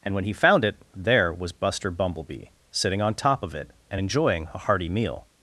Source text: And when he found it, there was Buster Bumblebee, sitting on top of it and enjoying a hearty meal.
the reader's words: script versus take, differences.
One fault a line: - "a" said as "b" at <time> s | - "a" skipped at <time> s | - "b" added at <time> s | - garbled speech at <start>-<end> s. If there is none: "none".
none